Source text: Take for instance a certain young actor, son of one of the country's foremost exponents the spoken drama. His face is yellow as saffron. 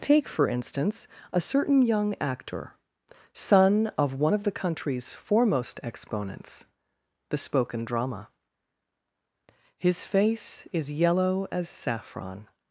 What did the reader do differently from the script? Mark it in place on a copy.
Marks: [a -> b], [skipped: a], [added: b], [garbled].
Take for instance a certain young actor, son of one of the country's foremost exponents the spoken drama. His face is yellow as saffron.